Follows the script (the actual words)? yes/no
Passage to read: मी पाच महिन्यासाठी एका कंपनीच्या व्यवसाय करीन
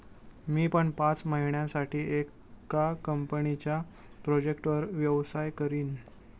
no